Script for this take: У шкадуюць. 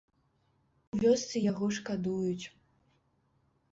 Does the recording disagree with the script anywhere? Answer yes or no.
yes